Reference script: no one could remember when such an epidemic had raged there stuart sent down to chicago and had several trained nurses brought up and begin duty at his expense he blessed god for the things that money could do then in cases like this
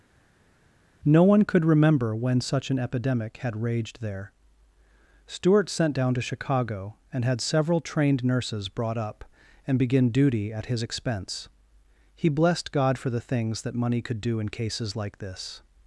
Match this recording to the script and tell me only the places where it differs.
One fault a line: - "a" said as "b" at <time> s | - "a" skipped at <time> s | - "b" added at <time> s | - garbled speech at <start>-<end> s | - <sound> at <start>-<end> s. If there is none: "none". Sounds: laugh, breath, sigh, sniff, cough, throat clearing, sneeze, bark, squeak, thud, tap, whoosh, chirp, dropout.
- "then" skipped at 14.4 s